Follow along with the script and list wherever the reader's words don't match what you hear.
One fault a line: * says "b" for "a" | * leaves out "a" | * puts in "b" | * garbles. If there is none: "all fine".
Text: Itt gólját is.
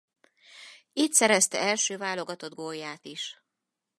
* puts in "szerezte első válogatott"